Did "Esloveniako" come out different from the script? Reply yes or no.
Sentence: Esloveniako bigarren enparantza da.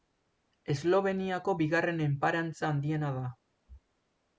no